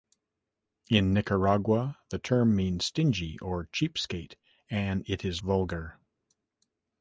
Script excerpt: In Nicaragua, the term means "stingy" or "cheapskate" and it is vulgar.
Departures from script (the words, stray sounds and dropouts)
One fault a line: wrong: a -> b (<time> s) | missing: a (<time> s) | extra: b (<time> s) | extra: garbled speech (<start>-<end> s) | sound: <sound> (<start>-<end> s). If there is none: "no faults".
no faults